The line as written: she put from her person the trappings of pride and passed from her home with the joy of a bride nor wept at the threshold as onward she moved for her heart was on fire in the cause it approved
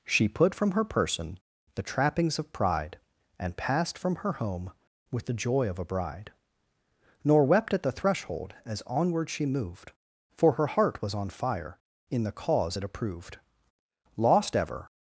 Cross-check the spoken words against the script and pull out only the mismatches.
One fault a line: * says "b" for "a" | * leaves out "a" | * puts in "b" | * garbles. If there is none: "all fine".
* puts in "lost ever"